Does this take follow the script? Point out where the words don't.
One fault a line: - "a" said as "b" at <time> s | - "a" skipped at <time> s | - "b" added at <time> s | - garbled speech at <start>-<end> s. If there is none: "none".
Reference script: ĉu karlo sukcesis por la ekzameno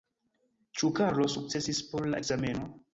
none